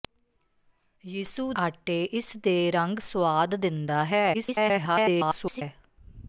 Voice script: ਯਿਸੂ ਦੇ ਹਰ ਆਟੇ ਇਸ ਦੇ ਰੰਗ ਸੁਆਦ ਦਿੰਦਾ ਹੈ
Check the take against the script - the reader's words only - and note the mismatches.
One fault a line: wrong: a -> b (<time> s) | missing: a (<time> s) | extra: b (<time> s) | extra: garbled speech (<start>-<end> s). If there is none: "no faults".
missing: ਦੇ ਹਰ (1.5 s)
extra: garbled speech (4.3-5.6 s)